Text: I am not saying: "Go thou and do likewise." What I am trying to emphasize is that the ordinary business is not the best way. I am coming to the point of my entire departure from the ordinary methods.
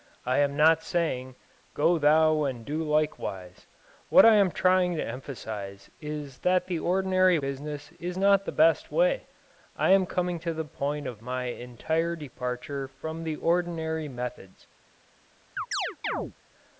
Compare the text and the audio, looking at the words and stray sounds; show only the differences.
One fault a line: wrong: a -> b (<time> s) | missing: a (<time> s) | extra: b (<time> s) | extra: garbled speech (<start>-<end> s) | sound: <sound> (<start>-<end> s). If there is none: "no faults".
sound: chirp (15.6-16.3 s)